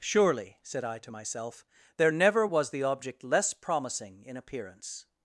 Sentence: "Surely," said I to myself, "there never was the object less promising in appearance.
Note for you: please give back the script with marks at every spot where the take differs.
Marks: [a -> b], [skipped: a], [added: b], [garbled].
"Surely," said I to myself, "there never was the object less promising in appearance.